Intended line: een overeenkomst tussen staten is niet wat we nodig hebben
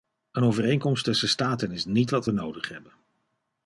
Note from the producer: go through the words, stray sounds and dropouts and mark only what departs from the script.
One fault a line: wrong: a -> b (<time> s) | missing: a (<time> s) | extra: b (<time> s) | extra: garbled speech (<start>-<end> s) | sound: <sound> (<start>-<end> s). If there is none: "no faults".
no faults